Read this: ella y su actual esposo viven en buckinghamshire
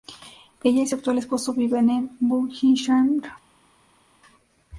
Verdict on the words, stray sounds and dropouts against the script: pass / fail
pass